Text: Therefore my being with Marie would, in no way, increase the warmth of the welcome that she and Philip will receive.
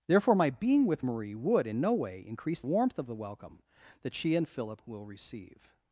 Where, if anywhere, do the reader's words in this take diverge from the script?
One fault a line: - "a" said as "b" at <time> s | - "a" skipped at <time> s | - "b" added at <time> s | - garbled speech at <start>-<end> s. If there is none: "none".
- "the" skipped at 2.6 s